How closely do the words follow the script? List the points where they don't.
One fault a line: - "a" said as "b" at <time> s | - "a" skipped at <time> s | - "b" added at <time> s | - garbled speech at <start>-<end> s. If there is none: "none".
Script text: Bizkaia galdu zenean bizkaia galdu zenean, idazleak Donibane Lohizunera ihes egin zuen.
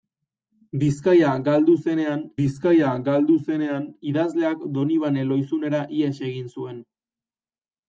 none